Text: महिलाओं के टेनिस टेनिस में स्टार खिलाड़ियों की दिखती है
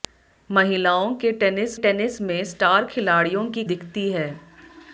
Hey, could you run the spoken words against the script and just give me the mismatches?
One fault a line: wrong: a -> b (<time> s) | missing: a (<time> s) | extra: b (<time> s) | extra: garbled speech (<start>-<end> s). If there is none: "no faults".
no faults